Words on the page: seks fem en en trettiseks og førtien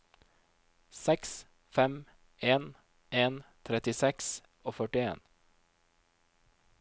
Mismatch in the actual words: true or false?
false